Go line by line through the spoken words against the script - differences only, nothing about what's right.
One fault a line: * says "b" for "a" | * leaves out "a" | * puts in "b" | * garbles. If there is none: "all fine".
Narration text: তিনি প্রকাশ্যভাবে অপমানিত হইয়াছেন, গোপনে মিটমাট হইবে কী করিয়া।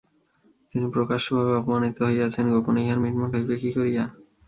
* puts in "ইহার"